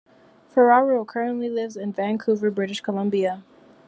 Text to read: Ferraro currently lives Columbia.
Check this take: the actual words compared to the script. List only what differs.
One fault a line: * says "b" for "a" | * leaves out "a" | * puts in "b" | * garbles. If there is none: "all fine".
* puts in "in Vancouver British"